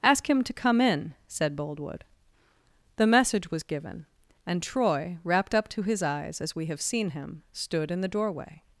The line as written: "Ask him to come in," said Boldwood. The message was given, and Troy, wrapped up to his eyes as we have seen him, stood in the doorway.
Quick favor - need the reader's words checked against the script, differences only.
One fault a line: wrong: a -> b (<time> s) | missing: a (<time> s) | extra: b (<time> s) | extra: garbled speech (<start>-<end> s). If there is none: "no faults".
no faults